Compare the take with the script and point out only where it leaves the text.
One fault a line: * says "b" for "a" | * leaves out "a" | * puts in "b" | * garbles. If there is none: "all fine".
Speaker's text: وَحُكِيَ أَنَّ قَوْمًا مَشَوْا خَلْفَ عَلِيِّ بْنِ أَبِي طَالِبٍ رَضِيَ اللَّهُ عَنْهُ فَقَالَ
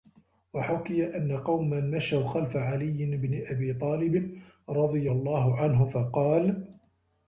all fine